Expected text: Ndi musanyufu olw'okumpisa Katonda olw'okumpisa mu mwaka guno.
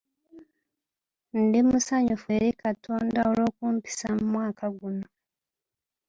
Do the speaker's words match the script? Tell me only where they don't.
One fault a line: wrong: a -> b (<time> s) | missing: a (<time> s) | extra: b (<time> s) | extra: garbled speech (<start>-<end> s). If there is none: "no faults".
wrong: olw'okumpisa -> eri (2.4 s)